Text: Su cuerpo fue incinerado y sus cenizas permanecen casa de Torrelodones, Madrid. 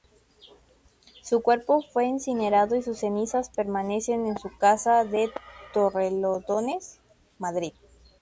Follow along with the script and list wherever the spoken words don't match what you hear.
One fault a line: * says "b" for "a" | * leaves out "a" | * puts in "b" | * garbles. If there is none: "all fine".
* puts in "en su"